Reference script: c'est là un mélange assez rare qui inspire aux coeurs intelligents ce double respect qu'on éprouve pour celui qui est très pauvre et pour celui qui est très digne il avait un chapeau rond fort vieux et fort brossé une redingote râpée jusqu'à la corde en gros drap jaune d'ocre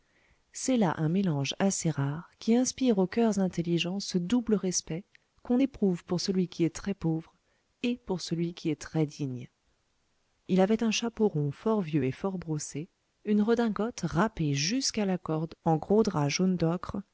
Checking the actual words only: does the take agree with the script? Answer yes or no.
yes